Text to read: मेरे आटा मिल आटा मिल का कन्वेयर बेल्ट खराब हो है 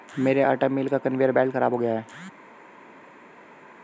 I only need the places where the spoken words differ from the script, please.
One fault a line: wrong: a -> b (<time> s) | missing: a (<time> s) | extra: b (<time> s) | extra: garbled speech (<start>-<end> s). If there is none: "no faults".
missing: आटा मिल (0.9 s)
extra: गया (1.8 s)